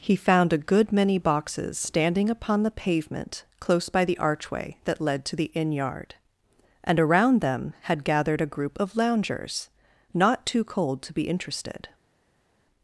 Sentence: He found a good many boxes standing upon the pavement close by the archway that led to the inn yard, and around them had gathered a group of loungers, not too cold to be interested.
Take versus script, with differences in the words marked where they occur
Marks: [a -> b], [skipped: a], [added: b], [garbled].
He found a good many boxes standing upon the pavement close by the archway that led to the inn yard, and around them had gathered a group of loungers, not too cold to be interested.